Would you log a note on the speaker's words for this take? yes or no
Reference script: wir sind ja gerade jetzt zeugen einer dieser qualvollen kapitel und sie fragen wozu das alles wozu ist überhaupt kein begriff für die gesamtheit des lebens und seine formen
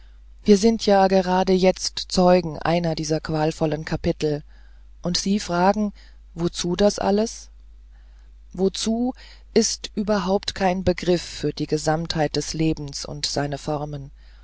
no